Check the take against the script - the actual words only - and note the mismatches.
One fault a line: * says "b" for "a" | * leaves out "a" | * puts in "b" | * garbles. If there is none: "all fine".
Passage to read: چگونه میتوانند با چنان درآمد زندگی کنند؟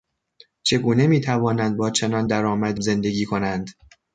all fine